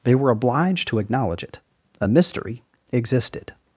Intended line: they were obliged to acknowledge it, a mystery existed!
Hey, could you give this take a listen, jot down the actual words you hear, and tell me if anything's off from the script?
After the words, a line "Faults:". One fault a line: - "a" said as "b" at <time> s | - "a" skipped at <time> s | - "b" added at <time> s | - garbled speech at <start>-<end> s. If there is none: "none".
they were obliged to acknowledge it, a mystery existed!
Faults:
none